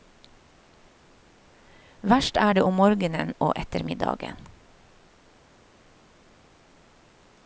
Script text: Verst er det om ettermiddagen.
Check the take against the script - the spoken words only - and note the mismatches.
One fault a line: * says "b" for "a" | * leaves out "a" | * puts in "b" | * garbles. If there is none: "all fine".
* puts in "morgenen og"